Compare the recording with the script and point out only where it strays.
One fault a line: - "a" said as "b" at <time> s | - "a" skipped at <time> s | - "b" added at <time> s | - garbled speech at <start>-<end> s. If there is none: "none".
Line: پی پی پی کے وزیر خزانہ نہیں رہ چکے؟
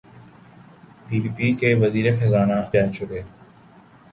- "نہیں" skipped at 2.6 s